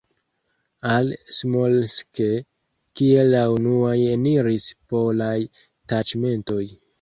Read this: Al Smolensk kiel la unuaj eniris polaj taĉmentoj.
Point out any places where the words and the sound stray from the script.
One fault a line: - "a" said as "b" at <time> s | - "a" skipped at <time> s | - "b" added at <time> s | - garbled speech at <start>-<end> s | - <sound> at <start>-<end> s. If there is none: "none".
none